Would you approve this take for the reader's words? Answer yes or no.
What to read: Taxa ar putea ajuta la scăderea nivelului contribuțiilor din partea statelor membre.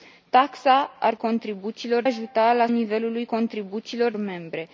no